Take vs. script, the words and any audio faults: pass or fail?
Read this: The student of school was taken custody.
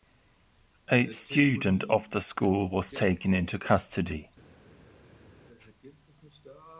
fail